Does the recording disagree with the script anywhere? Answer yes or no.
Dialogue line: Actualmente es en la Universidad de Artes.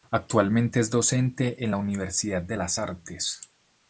yes